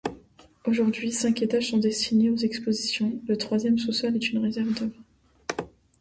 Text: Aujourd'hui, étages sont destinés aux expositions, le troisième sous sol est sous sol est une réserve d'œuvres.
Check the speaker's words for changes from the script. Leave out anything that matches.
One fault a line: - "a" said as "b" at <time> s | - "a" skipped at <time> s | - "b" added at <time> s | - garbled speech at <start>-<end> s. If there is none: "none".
- "cinq" added at 1.1 s
- "sous sol est" skipped at 4.3 s